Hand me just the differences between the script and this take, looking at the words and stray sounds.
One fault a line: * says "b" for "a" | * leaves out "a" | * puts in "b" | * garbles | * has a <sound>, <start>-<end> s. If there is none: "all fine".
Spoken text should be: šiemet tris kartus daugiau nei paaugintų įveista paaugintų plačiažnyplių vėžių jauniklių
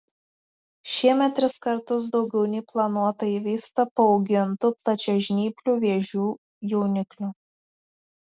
* says "planuota" for "paaugintų"